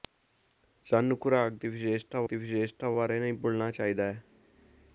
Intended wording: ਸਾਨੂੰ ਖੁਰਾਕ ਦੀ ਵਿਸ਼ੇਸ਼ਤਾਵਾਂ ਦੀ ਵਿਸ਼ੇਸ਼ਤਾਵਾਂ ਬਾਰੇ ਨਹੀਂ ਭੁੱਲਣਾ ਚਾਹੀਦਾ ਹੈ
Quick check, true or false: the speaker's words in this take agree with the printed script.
true